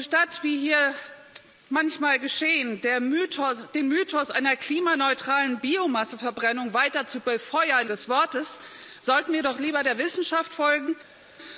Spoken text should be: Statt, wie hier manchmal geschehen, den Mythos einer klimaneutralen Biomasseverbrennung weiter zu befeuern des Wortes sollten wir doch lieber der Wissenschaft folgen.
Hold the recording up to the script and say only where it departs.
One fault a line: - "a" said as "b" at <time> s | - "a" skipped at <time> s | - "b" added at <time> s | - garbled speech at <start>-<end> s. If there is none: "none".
none